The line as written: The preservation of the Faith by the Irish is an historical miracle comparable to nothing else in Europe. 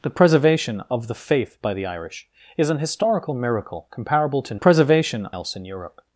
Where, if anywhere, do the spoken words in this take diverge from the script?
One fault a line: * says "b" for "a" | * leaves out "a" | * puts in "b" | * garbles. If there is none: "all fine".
* says "preservation" for "nothing"